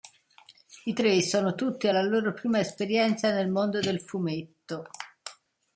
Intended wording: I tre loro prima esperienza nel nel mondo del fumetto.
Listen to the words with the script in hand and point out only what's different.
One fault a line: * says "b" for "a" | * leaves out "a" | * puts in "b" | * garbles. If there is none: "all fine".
* puts in "sono tutti alla"
* leaves out "nel"